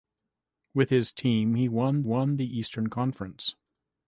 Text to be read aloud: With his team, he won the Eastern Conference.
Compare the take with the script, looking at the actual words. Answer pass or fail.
fail